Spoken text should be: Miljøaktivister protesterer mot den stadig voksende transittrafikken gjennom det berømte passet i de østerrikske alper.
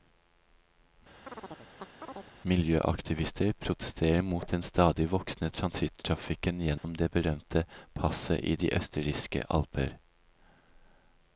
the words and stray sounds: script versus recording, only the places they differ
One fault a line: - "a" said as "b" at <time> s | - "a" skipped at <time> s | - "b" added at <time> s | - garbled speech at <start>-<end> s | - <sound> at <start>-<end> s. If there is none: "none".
- chirp at 1.3-2.3 s
- dropout at 6.8-6.8 s